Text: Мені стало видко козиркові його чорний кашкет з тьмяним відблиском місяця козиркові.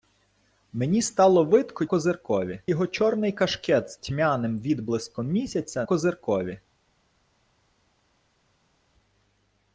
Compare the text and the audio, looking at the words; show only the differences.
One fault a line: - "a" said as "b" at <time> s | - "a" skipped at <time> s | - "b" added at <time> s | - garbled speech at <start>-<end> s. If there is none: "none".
none